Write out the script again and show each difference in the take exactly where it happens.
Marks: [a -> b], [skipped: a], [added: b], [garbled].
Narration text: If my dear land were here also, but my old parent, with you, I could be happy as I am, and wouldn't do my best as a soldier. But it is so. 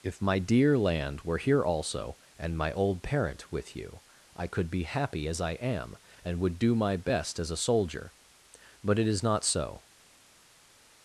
If my dear land were here also, [but -> and] my old parent, with you, I could be happy as I am, and [wouldn't -> would] do my best as a soldier. But it is [added: not] so.